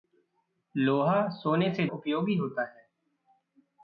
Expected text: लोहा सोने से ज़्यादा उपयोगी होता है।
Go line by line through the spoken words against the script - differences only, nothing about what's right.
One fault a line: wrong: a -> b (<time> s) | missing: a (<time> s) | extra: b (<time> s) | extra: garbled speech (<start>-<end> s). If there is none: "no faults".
missing: ज़्यादा (1.9 s)